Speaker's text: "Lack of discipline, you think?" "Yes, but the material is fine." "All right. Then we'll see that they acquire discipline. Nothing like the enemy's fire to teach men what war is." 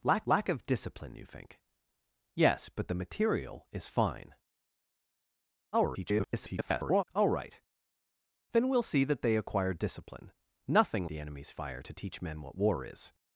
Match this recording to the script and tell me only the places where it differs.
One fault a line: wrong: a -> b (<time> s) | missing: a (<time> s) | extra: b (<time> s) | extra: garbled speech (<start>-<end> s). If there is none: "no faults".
extra: lack (0.2 s)
extra: garbled speech (5.7-7.1 s)
missing: like (11.1 s)